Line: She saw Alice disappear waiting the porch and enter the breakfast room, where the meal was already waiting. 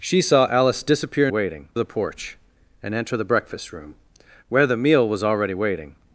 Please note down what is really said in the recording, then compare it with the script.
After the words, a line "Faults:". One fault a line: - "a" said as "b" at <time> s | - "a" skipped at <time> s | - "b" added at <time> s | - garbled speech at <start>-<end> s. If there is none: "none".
She saw Alice disappear waiting the porch and enter the breakfast room, where the meal was already waiting.
Faults:
none